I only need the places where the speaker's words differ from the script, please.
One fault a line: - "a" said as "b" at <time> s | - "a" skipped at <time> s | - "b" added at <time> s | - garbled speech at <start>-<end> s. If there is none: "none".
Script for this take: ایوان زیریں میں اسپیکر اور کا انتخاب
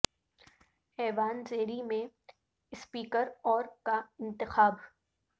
none